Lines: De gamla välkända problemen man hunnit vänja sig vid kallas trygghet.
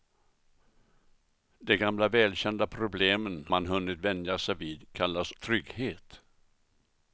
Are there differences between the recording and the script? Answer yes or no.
no